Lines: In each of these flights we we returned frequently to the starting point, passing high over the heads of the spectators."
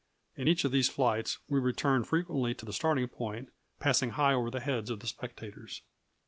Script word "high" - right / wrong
right